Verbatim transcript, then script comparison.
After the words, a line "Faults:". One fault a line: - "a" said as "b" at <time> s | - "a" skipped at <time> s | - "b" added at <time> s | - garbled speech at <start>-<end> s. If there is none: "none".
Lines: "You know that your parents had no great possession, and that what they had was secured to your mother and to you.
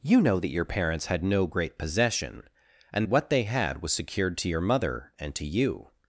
"You know that your parents had no great possession, and what they had was secured to your mother and to you.
Faults:
- "that" skipped at 3.1 s